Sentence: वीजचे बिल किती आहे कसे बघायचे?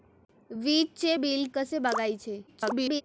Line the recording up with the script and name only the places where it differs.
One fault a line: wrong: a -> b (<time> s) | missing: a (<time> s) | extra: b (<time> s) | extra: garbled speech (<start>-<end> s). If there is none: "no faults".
missing: किती आहे (1.5 s)
extra: garbled speech (2.5-3.0 s)